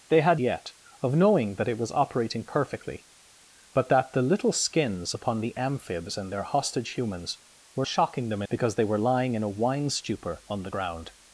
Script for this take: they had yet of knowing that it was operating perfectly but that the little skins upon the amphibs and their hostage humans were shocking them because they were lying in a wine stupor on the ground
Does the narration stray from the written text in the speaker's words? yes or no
no